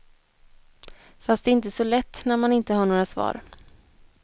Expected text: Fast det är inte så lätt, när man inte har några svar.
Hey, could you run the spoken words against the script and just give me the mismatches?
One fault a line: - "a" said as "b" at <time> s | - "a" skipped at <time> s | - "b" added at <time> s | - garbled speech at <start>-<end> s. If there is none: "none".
none